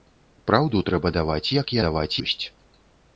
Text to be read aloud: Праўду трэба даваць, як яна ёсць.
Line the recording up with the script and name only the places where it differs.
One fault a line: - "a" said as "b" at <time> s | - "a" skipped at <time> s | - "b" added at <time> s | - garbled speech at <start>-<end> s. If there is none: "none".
- "яна" said as "даваць" at 1.8 s